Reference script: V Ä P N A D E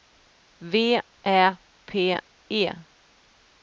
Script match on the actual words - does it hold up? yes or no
no